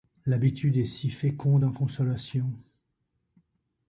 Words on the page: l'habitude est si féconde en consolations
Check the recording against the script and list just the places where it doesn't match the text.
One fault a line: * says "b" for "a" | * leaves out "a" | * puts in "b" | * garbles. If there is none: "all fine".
all fine